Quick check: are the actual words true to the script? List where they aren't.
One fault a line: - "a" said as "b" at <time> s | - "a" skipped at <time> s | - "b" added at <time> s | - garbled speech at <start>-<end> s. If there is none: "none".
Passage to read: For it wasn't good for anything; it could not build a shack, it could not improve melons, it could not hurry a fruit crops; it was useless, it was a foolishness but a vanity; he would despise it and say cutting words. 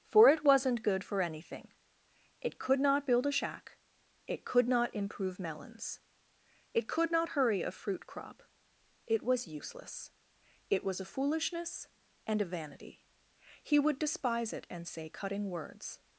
- "crops" said as "crop" at 8.1 s
- "but" said as "and" at 12.3 s